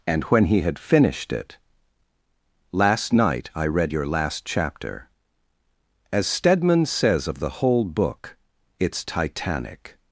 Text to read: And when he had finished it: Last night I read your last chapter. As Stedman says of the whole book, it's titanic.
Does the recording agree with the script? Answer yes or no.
yes